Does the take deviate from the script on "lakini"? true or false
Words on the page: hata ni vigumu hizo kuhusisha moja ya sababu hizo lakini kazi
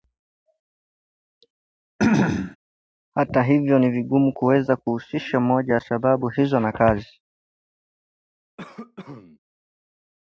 true